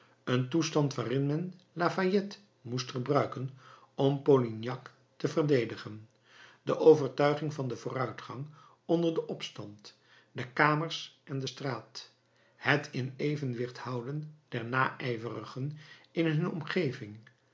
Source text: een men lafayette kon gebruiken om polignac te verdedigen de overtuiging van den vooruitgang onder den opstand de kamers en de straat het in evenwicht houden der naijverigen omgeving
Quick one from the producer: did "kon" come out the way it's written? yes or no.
no